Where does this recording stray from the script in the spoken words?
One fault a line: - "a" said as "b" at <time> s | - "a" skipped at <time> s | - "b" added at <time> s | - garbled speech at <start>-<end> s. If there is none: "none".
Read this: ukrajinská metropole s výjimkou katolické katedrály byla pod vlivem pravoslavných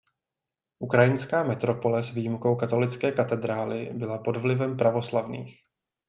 none